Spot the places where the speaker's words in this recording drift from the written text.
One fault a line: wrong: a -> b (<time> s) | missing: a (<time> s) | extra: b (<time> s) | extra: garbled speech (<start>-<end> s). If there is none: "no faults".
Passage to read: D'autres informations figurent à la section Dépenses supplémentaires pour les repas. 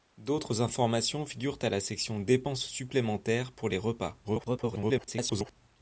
extra: garbled speech (4.2-5.6 s)